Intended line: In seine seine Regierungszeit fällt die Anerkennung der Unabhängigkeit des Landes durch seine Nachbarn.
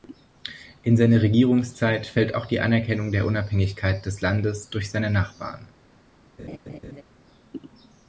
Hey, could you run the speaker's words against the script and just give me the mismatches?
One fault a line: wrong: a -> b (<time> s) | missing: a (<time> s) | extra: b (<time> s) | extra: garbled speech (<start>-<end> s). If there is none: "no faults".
missing: seine (1.2 s)
extra: auch (2.3 s)